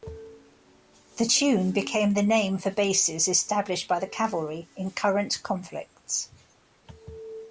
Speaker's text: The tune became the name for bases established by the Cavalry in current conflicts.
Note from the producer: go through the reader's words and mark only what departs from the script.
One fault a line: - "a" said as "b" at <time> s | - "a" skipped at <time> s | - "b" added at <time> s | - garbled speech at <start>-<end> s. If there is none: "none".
none